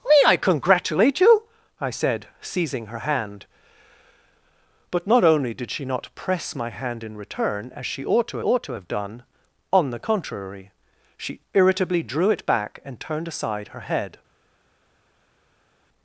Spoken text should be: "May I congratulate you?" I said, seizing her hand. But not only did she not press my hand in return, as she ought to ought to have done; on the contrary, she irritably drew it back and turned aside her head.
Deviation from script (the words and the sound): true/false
false